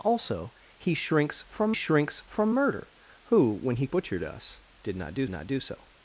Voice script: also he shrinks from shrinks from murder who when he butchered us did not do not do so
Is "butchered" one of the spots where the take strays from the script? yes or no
no